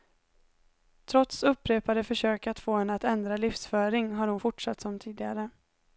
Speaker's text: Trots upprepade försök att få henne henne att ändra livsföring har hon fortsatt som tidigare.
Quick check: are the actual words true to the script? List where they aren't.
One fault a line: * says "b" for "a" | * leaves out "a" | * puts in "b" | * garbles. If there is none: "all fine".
* leaves out "henne"